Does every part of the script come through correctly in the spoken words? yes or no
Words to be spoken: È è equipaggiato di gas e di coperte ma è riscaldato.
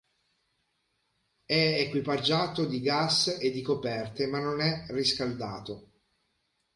no